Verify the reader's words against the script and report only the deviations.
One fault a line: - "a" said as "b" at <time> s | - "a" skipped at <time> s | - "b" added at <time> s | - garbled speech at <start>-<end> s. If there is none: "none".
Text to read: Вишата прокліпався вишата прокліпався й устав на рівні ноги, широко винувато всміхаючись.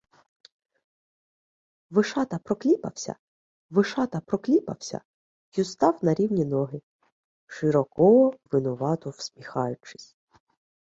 none